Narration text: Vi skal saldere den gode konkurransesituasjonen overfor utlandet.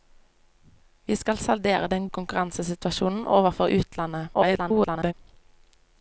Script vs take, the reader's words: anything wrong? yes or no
yes